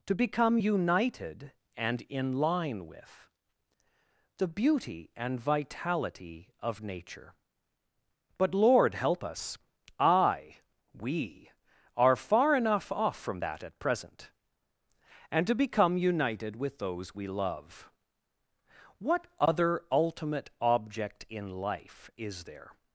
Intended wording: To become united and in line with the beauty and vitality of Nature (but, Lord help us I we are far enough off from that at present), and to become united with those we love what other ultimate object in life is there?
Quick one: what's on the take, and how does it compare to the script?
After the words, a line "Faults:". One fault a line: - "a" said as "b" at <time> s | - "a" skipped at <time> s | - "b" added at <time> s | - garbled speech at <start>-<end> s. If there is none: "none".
To become united and in line with the beauty and vitality of Nature (but, Lord help us I we are far enough off from that at present), and to become united with those we love what other ultimate object in life is there?
Faults:
none